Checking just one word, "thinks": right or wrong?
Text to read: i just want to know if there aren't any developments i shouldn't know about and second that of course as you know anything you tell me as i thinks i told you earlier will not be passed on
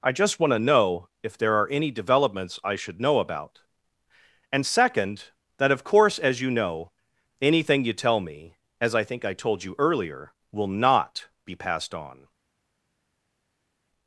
wrong